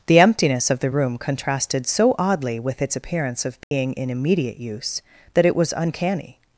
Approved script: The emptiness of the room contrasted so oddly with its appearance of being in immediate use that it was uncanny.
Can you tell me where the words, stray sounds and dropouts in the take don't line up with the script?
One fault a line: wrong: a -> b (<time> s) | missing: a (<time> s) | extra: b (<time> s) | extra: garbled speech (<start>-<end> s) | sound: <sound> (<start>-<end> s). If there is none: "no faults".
sound: dropout (3.6-3.7 s)